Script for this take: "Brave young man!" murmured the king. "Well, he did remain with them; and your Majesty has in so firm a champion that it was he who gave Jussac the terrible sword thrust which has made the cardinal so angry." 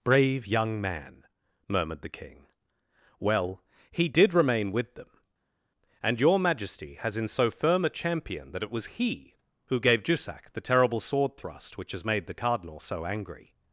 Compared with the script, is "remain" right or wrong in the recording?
right